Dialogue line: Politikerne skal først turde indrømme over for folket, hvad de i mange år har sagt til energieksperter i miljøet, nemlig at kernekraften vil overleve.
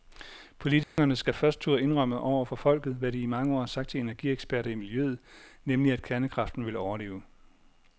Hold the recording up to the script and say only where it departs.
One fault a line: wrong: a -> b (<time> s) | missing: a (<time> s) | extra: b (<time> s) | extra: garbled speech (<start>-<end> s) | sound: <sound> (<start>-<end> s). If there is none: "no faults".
sound: dropout (0.8-1.0 s)